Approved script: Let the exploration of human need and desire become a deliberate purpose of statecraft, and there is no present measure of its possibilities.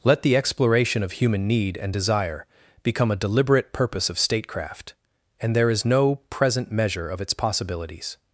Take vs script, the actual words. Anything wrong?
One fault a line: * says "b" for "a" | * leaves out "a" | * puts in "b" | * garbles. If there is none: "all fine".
all fine